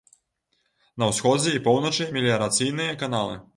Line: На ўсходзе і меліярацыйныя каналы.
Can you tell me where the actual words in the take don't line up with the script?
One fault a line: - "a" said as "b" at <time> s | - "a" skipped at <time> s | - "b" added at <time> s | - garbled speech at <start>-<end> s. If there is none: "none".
- "поўначы" added at 1.7 s